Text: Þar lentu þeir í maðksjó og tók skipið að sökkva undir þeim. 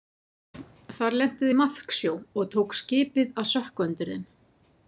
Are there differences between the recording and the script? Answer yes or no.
yes